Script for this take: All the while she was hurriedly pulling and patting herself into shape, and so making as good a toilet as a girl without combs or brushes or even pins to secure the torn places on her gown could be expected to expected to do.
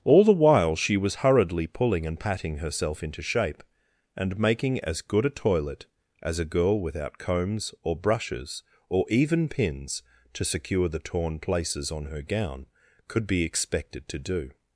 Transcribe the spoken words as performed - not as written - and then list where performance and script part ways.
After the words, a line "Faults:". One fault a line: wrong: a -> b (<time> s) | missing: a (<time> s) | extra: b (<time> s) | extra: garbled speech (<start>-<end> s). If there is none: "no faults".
All the while she was hurriedly pulling and patting herself into shape, and making as good a toilet as a girl without combs or brushes or even pins to secure the torn places on her gown could be expected to do.
Faults:
missing: so (4.4 s)
missing: expected to (14.2 s)